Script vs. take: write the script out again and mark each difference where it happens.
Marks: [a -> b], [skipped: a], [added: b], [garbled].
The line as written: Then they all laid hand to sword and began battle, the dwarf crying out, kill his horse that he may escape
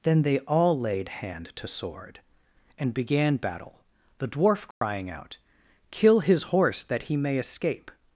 Then they all laid hand to sword and began battle, the dwarf crying out, kill his horse that he may escape